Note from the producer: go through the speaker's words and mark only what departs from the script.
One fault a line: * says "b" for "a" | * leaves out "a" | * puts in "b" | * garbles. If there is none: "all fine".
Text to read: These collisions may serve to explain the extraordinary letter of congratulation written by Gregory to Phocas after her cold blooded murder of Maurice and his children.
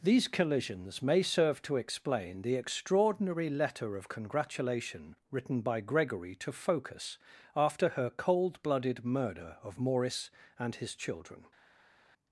all fine